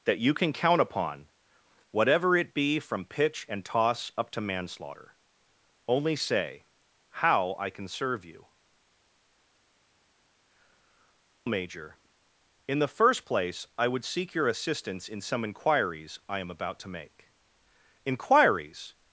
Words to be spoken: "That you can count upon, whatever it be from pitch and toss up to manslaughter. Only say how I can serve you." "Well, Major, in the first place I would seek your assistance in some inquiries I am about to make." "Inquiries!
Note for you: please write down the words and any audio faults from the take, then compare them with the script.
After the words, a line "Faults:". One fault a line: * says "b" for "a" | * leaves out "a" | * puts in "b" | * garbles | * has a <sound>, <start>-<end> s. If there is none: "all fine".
"That you can count upon, whatever it be from pitch and toss up to manslaughter. Only say how I can serve you." "Major, in the first place I would seek your assistance in some inquiries I am about to make." "Inquiries!
Faults:
* leaves out "Well"